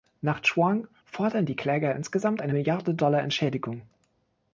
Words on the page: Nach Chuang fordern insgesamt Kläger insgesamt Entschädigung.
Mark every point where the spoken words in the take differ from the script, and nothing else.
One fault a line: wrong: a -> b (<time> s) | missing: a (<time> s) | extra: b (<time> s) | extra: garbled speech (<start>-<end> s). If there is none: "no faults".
wrong: insgesamt -> die (1.4 s)
extra: eine Milliarde Dollar (2.4 s)